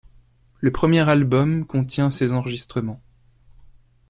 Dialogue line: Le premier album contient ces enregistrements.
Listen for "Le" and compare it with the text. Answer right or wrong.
right